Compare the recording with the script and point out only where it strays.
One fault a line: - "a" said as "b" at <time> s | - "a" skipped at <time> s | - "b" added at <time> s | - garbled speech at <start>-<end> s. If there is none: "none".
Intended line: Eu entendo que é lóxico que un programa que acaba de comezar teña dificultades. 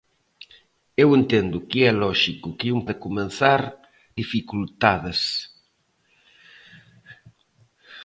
- "programa que acaba" skipped at 2.8 s
- "teña" skipped at 3.6 s